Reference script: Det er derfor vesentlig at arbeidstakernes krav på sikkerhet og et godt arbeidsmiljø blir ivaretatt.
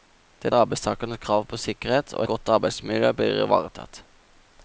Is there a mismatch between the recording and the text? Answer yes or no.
yes